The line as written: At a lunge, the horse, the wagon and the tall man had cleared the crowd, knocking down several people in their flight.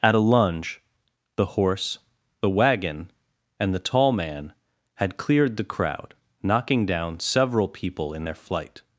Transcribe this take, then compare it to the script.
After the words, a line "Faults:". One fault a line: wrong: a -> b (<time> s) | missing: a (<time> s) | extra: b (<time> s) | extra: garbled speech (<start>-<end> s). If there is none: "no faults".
At a lunge, the horse, the wagon and the tall man had cleared the crowd, knocking down several people in their flight.
Faults:
no faults